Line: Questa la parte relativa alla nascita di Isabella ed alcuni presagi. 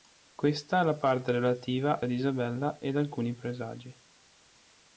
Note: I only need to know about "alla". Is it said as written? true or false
false